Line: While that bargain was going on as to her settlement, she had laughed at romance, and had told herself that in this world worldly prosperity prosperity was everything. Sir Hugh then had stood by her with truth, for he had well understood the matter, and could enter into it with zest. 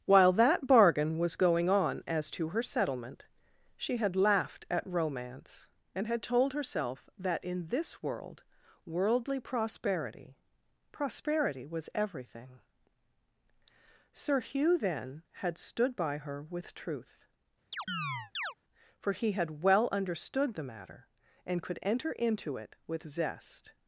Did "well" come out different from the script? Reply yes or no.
no